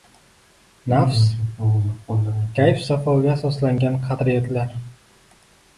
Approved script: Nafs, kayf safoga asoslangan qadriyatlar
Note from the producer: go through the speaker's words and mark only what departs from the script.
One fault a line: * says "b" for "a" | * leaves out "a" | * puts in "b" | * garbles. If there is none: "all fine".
all fine